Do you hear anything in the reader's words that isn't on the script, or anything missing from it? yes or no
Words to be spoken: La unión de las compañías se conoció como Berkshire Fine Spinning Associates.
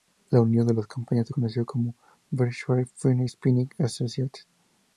no